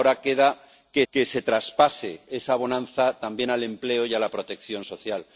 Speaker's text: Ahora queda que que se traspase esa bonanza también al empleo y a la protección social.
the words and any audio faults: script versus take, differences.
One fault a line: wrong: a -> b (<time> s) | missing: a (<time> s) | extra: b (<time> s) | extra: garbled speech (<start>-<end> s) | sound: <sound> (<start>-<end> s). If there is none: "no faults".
no faults